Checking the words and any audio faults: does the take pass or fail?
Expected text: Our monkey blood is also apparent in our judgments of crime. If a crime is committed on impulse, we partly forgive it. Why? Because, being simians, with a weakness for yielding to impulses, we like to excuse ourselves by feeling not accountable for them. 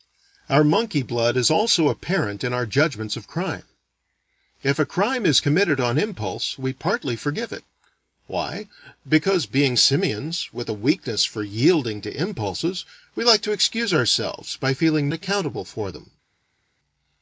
fail